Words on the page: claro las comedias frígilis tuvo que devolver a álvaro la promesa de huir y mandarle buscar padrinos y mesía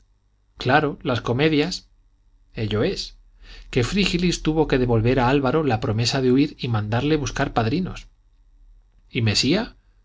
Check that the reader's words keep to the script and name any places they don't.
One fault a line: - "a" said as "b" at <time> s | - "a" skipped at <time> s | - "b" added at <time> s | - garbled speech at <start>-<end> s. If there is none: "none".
- "ello es que" added at 2.5 s